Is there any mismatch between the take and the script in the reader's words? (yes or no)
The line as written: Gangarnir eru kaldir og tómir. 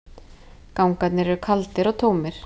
no